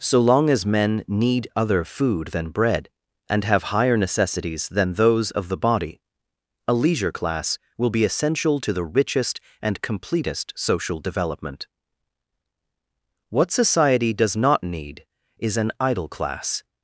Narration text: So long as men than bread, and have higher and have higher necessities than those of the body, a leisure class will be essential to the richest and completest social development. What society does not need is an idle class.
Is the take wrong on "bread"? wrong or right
wrong